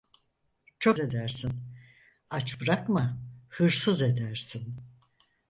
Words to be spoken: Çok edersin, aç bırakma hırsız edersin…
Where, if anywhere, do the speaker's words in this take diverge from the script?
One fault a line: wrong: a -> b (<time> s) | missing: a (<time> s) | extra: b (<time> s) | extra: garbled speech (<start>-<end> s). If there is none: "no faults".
no faults